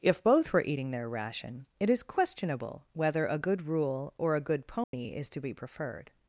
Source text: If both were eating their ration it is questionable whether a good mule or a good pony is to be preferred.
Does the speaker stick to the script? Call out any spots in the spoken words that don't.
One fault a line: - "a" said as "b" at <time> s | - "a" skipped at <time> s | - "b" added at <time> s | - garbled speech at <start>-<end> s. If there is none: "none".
- "mule" said as "rule" at 3.6 s